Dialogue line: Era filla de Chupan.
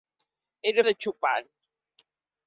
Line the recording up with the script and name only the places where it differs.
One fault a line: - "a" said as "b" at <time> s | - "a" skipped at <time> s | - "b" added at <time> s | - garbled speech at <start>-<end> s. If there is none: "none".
- "filla" skipped at 0.8 s